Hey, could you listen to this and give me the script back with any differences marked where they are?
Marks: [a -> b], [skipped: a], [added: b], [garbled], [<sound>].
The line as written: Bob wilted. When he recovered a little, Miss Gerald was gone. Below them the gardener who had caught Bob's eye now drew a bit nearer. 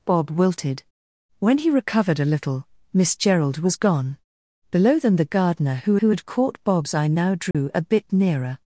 Bob wilted. When he recovered a little, Miss Gerald was gone. Below them the gardener who [added: who] had caught Bob's eye now drew [dropout] a bit nearer.